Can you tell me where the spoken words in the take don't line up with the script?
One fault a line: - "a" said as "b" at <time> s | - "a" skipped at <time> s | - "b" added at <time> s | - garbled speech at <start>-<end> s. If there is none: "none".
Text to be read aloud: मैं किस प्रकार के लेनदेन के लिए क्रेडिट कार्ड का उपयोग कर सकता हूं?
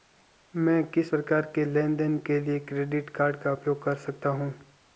none